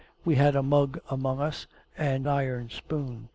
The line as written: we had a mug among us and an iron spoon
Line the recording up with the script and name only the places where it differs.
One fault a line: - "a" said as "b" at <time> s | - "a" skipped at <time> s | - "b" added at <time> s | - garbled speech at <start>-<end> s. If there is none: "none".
- "an" skipped at 2.3 s